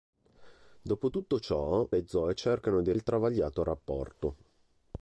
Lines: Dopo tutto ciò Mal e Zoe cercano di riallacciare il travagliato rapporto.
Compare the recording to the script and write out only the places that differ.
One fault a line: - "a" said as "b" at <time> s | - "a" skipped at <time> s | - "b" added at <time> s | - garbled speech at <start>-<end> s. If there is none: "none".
- "Mal" skipped at 1.9 s
- "riallacciare" skipped at 2.9 s